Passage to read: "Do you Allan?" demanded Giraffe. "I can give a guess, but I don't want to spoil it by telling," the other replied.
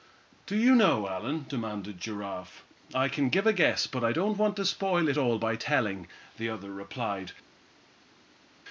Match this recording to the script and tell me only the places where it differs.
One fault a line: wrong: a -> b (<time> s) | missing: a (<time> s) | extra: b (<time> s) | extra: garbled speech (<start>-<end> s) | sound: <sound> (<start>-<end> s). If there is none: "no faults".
extra: know (0.7 s)
extra: all (5.2 s)